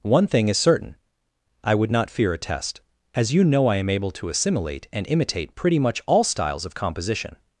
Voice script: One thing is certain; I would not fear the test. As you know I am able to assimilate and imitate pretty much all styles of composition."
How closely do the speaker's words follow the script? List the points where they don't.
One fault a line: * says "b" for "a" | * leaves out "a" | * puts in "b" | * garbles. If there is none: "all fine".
* says "a" for "the"